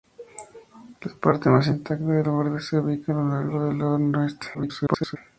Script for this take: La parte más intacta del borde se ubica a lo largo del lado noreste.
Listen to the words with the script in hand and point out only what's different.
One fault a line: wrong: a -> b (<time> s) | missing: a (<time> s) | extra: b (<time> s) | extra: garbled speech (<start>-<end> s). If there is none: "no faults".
extra: garbled speech (4.5-5.2 s)